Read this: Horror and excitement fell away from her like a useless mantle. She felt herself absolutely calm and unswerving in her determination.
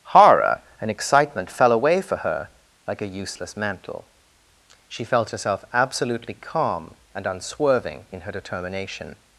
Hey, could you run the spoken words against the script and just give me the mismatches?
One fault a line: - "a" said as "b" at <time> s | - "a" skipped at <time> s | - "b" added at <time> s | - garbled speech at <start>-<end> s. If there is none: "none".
- "from" said as "for" at 2.0 s